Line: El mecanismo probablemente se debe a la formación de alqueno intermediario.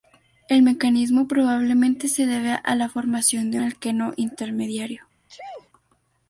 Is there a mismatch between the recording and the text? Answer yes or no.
no